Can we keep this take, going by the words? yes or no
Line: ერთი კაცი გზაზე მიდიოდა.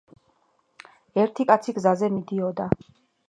yes